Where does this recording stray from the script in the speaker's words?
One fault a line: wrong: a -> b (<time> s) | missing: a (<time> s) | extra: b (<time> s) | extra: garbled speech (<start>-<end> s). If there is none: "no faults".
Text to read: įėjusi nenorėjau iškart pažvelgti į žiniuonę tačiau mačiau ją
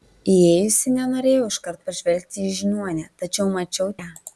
no faults